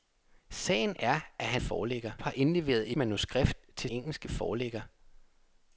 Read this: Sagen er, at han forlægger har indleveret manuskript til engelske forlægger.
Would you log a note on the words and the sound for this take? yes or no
no